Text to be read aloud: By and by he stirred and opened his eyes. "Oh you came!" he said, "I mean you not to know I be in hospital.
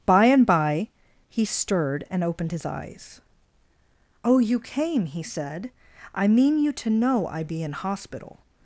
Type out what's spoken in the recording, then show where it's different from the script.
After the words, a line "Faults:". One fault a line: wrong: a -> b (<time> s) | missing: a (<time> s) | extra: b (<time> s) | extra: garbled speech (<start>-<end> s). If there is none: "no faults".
By and by he stirred and opened his eyes. "Oh you came!" he said, "I mean you to know I be in hospital.
Faults:
missing: not (6.7 s)